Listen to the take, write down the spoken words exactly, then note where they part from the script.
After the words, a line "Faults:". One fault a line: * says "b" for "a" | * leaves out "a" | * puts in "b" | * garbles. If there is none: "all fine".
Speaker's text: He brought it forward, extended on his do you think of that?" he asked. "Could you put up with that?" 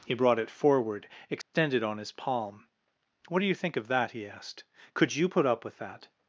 He brought it forward, extended on his palm. "What do you think of that?" he asked. "Could you put up with that?"
Faults:
* puts in "palm What"